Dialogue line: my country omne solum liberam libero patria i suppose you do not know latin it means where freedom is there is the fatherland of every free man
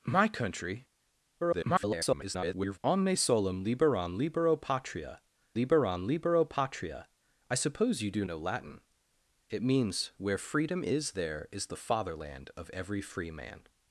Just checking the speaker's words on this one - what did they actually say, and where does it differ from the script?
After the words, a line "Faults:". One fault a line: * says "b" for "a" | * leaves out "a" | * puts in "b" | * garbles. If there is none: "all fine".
my country [garbled] omne solum liberam libero patria liberam libero patria i suppose you do know latin it means where freedom is there is the fatherland of every free man
Faults:
* garbles
* puts in "liberam libero patria"
* leaves out "not"